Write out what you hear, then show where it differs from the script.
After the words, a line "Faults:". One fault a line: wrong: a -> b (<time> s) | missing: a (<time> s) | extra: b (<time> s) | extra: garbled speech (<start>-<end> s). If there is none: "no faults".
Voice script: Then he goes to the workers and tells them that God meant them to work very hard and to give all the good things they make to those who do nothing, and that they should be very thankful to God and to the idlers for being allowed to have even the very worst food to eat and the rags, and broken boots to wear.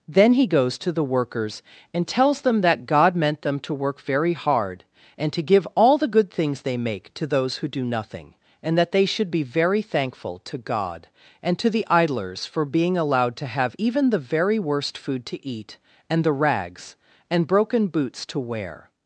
Then he goes to the workers and tells them that God meant them to work very hard and to give all the good things they make to those who do nothing, and that they should be very thankful to God and to the idlers for being allowed to have even the very worst food to eat and the rags, and broken boots to wear.
Faults:
no faults